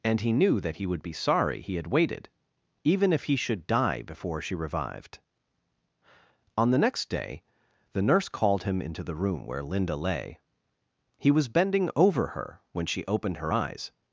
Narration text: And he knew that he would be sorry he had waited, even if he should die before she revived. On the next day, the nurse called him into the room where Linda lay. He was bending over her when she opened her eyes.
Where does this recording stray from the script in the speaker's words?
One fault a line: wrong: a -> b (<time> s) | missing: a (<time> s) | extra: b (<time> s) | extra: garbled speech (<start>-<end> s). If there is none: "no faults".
no faults